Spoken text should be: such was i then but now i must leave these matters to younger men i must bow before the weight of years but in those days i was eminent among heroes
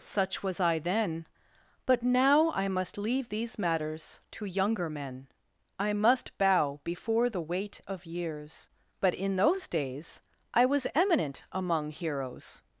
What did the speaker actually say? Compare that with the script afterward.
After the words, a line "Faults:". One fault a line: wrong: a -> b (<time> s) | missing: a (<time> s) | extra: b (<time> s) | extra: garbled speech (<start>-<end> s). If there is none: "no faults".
such was i then but now i must leave these matters to younger men i must bow before the weight of years but in those days i was eminent among heroes
Faults:
no faults